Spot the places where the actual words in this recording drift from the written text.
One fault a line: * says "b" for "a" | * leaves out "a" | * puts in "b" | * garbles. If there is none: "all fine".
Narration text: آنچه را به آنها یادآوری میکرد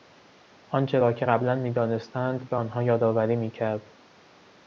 * puts in "که قبلا میدانستند"